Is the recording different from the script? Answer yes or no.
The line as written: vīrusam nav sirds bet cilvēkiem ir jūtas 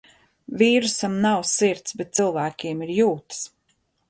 no